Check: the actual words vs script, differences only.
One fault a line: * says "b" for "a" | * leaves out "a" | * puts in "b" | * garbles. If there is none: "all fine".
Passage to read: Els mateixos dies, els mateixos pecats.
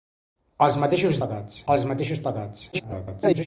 * says "pecats" for "dies"
* garbles